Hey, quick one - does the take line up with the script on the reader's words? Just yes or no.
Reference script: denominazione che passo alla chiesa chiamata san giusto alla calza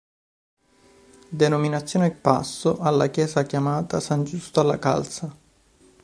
no